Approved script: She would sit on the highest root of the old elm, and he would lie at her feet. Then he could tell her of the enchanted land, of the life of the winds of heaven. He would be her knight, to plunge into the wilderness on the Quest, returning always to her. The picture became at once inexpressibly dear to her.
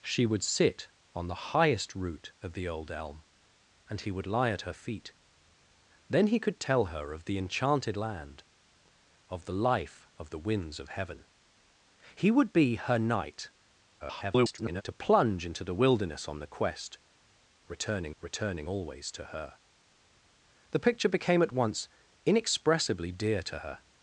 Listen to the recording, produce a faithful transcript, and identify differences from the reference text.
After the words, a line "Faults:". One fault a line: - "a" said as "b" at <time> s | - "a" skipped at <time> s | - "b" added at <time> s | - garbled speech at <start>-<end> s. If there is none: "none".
She would sit on the highest root of the old elm, and he would lie at her feet. Then he could tell her of the enchanted land, of the life of the winds of heaven. He would be her knight, [garbled] to plunge into the wilderness on the Quest, returning returning always to her. The picture became at once inexpressibly dear to her.
Faults:
- garbled speech at 14.0-14.8 s
- "returning" added at 18.2 s